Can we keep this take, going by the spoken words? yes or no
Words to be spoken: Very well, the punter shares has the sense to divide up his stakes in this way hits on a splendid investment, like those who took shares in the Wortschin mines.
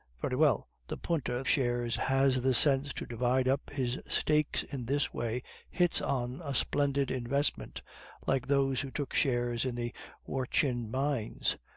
yes